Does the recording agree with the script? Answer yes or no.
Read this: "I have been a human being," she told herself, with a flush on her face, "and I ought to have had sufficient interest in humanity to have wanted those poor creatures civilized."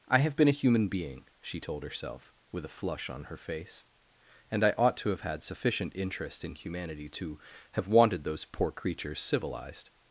yes